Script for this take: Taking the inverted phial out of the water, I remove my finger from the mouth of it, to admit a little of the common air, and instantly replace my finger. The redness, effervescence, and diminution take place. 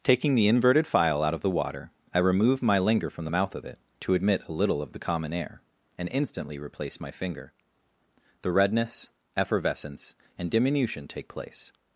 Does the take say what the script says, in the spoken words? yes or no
no